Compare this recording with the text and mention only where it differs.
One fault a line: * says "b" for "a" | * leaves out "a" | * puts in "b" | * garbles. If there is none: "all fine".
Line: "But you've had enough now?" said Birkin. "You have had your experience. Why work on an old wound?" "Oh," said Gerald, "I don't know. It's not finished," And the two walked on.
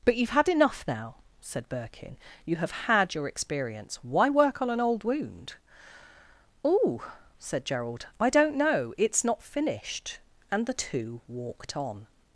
all fine